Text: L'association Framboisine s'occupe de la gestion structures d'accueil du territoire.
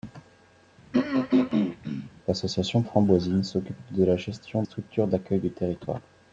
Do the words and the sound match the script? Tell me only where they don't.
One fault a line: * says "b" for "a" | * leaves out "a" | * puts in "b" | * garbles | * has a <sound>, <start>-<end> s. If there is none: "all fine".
* has a throat clearing, 0.9-2.1 s